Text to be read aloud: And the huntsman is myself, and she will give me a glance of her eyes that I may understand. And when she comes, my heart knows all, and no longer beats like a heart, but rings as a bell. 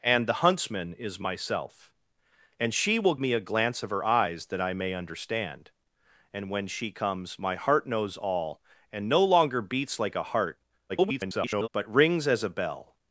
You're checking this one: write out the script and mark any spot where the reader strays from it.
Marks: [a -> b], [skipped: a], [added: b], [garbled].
And the huntsman is myself, and she will [skipped: give] me a glance of her eyes that I may understand. And when she comes, my heart knows all, and no longer beats like a heart, [garbled] but rings as a bell.